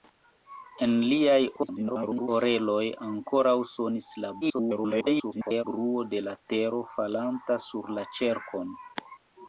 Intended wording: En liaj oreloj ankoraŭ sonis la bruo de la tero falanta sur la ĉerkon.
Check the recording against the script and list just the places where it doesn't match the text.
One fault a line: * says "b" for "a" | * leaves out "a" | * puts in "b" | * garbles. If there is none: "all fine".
* garbles
* garbles